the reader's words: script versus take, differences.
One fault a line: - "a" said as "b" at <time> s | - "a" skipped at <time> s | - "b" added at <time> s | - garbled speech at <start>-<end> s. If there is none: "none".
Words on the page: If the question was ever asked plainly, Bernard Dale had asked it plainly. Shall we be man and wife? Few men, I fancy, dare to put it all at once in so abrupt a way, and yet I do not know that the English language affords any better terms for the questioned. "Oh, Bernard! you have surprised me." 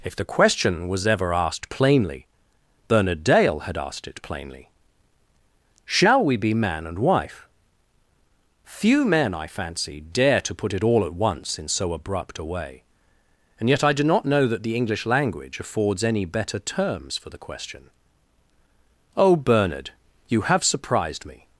- "questioned" said as "question" at 17.4 s